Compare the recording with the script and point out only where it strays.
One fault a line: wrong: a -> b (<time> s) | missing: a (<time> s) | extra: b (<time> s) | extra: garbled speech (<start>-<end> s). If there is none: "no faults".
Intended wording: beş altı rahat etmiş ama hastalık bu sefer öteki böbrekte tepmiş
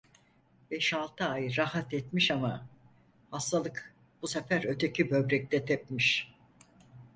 extra: ay (1.2 s)